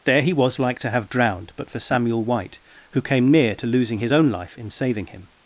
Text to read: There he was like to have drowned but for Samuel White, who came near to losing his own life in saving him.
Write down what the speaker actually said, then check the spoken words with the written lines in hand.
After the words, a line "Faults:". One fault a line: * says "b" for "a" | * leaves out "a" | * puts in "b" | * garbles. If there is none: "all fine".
There he was like to have drowned but for Samuel White, who came near to losing his own life in saving him.
Faults:
all fine